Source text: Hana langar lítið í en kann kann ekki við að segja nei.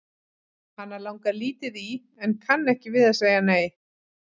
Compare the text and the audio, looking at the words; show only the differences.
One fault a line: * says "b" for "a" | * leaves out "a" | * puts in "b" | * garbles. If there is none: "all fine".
* leaves out "kann"